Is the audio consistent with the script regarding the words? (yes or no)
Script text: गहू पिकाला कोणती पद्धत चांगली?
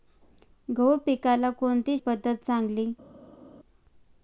yes